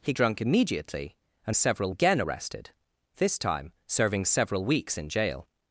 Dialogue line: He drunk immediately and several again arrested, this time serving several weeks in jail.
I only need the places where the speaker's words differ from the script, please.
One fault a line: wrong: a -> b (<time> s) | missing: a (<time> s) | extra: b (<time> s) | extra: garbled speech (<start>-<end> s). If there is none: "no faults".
no faults